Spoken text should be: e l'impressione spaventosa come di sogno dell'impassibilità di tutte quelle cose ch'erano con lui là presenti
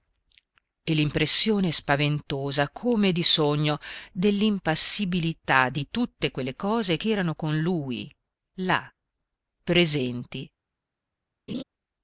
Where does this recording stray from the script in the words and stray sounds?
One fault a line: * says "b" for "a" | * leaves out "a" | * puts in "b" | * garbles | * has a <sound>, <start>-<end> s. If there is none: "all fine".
* has a laugh, 11.5-11.6 s